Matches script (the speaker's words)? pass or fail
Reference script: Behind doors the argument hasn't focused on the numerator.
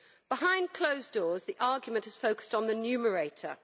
fail